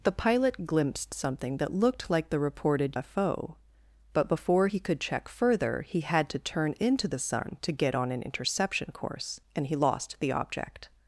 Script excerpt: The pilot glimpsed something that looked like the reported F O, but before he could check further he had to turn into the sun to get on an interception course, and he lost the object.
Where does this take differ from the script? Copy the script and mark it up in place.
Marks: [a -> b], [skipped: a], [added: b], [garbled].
The pilot glimpsed something that looked like the reported F O, but before he could check further he had to turn into the sun to get on an interception course, and he lost the object.